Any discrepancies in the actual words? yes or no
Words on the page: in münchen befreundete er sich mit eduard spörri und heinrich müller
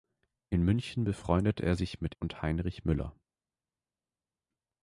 yes